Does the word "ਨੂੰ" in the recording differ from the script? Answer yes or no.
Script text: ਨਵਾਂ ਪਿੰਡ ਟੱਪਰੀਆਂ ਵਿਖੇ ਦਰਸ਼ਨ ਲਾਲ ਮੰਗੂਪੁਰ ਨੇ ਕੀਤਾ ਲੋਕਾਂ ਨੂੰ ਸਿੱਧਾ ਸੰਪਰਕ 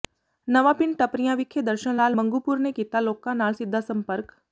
yes